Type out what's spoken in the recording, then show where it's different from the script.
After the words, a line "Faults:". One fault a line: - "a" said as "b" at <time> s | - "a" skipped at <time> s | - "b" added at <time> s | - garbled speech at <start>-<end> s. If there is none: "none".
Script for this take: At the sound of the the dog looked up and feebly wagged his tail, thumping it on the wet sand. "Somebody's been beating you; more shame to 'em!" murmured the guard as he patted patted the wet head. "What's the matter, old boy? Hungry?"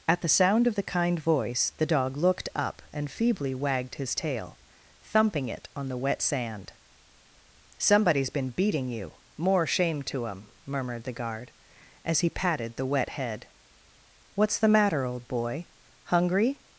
At the sound of the kind voice the dog looked up and feebly wagged his tail, thumping it on the wet sand. "Somebody's been beating you; more shame to 'em!" murmured the guard as he patted the wet head. "What's the matter, old boy? Hungry?"
Faults:
- "kind voice" added at 0.8 s
- "patted" skipped at 12.8 s